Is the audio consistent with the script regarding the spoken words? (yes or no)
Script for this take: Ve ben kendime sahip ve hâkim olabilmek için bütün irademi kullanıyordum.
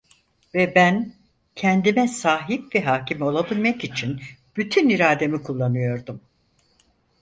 yes